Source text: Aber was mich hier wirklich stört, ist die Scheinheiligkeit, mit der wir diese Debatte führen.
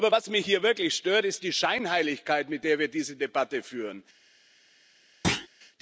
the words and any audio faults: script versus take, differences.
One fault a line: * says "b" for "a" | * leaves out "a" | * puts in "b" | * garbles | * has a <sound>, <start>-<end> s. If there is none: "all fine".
* has a thud, 5.2-5.5 s